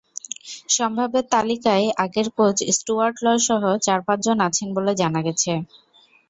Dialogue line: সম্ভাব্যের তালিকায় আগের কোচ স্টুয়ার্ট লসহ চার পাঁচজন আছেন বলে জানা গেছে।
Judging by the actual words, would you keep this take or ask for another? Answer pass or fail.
pass